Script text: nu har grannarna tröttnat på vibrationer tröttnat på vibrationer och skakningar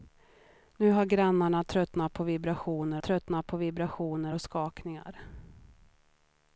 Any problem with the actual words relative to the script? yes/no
no